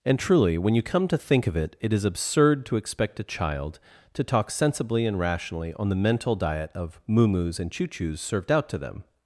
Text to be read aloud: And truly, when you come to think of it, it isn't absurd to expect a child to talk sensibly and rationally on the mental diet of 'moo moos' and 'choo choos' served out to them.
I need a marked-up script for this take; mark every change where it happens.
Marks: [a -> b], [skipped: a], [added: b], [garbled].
And truly, when you come to think of it, it [isn't -> is] absurd to expect a child to talk sensibly and rationally on the mental diet of 'moo moos' and 'choo choos' served out to them.